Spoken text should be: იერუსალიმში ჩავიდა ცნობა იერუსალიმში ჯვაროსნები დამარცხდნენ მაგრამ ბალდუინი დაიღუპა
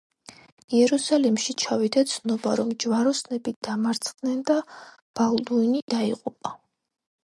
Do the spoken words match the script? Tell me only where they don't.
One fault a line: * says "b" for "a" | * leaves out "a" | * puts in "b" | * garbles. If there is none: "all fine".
* says "რომ" for "იერუსალიმში"
* says "და" for "მაგრამ"